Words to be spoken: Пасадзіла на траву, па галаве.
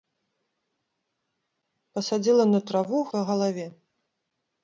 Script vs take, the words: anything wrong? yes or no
no